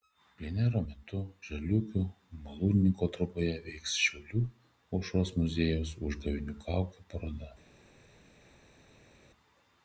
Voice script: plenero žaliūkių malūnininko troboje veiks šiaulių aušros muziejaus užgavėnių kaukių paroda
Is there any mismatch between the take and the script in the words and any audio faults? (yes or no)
yes